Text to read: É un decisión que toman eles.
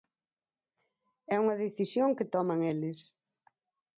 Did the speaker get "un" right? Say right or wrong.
wrong